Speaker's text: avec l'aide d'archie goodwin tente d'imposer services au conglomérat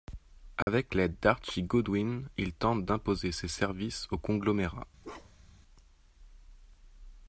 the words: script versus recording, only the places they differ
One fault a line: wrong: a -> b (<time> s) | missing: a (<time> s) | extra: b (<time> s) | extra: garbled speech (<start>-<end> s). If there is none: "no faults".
extra: il (2.4 s)
extra: ses (3.3 s)